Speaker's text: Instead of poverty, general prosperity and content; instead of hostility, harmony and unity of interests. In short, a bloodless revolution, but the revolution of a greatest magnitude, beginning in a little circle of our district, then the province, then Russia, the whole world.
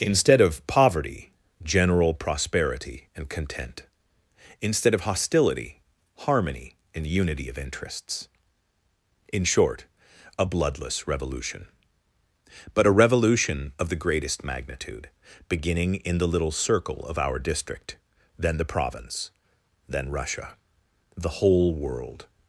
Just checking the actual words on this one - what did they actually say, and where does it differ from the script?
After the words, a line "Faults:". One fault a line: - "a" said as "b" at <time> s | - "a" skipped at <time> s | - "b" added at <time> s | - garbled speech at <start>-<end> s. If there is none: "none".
Instead of poverty, general prosperity and content; instead of hostility, harmony and unity of interests. In short, a bloodless revolution, but a revolution of the greatest magnitude, beginning in the little circle of our district, then the province, then Russia, the whole world.
Faults:
- "the" said as "a" at 12.9 s
- "a" said as "the" at 13.9 s
- "a" said as "the" at 16.2 s